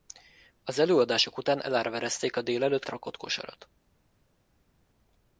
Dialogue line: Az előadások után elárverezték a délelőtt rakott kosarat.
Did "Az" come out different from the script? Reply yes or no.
no